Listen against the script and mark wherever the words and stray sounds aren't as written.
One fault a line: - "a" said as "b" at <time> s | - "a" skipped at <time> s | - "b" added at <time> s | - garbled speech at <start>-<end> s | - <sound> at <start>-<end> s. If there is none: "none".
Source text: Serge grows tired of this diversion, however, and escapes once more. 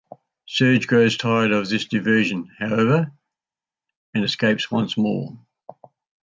none